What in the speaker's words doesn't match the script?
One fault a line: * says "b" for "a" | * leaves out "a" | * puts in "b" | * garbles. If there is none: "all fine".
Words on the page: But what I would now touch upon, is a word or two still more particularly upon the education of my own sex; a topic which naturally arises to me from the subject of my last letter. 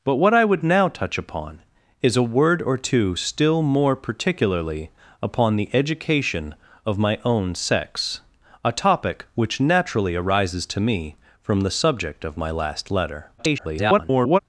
* garbles